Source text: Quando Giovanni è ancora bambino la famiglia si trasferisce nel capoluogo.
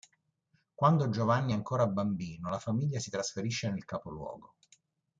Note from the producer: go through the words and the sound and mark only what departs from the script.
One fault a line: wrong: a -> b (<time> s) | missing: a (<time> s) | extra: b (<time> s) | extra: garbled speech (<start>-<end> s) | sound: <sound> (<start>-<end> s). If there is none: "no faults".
no faults